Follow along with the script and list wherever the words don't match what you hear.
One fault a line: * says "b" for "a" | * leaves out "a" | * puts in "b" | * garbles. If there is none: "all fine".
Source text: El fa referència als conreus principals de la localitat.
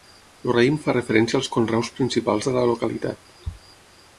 * puts in "raïm"